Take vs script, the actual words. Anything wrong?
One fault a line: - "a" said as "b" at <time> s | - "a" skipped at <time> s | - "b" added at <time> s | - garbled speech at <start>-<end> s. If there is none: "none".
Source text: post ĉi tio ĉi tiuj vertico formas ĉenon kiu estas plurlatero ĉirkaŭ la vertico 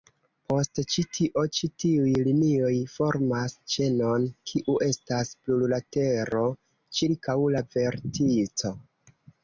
- "vertico" said as "linioj" at 2.3 s